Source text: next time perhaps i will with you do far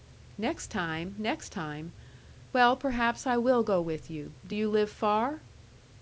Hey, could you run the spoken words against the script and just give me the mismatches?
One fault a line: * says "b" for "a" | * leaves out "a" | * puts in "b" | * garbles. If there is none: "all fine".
* puts in "next time well"
* puts in "go"
* puts in "you live"